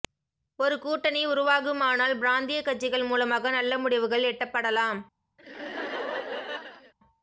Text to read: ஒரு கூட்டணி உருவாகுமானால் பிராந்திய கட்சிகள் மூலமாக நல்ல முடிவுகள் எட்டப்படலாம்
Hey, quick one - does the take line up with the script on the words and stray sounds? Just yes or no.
no